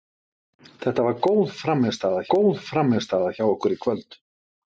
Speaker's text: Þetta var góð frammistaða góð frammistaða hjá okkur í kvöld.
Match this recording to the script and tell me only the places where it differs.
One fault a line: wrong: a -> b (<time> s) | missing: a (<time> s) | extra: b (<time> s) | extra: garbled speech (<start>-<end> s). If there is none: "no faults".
no faults